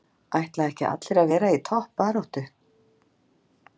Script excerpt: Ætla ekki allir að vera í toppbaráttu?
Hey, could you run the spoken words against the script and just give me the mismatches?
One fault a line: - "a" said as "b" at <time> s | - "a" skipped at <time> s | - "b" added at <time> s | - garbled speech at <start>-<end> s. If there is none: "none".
none